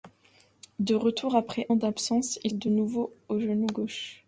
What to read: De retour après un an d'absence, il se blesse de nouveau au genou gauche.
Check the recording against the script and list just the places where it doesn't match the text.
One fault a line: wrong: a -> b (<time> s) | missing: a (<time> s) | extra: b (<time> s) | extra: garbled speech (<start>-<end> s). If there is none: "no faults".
missing: un (1.7 s)
missing: se blesse (2.5 s)